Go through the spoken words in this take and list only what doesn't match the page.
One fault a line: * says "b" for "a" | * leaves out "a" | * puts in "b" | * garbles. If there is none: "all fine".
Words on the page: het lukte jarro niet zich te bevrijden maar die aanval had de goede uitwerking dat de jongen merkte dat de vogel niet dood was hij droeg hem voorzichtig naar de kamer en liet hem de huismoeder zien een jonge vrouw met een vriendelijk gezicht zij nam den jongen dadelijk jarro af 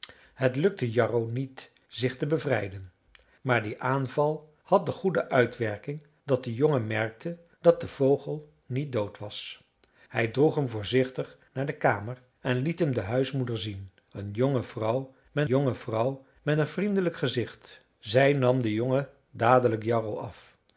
* puts in "jonge vrouw met"